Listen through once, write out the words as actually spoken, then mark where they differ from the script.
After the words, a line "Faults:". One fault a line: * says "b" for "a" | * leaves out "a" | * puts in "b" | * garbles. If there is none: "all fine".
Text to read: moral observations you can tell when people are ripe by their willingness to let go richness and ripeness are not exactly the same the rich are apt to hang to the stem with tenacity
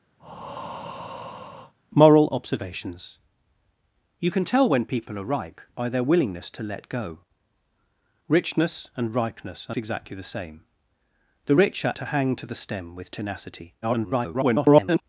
moral observations you can tell when people are ripe by their willingness to let go richness and ripeness are exactly the same the rich are to hang to the stem with tenacity [garbled]
Faults:
* leaves out "not"
* leaves out "apt"
* garbles